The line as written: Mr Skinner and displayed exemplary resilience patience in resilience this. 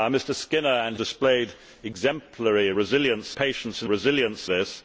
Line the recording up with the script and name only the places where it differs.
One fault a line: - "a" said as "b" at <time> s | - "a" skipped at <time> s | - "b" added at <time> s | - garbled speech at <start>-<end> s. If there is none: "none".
none